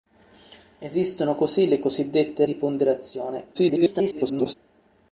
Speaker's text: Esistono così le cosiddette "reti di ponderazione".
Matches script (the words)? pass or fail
fail